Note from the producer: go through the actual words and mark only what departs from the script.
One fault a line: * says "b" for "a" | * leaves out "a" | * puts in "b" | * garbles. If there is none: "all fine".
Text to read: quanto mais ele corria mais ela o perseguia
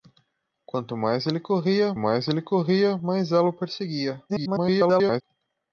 * puts in "ele corria mais"
* garbles